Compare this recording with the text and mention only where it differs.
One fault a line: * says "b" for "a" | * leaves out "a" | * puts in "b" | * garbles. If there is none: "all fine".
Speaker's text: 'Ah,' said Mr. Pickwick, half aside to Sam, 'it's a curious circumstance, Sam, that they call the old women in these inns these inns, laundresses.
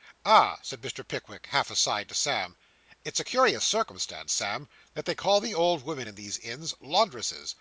* leaves out "these inns"